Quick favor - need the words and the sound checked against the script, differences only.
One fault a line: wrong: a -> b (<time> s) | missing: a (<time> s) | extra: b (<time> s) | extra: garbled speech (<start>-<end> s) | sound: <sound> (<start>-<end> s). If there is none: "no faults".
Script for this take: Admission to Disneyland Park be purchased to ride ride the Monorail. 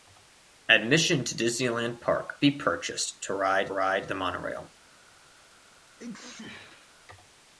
sound: sneeze (6.0-6.9 s)